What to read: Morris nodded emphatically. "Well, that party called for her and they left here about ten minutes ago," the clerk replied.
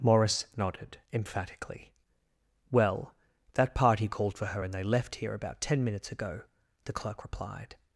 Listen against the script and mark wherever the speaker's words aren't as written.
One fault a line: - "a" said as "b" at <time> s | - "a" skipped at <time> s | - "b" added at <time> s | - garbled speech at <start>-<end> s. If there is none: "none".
none